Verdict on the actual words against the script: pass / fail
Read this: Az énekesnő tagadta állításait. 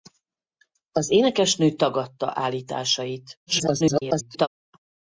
fail